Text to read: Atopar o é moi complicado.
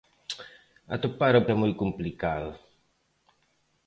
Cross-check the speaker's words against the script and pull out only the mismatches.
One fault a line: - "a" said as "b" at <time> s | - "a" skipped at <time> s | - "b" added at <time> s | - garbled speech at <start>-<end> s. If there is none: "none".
none